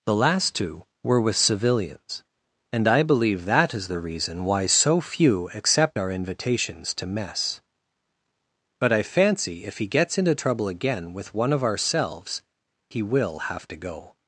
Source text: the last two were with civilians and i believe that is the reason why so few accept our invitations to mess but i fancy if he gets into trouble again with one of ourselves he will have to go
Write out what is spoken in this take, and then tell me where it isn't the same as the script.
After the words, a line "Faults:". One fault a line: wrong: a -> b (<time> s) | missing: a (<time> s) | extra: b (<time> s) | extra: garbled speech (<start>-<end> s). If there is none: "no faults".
the last two were with civilians and i believe that is the reason why so few accept our invitations to mess but i fancy if he gets into trouble again with one of ourselves he will have to go
Faults:
no faults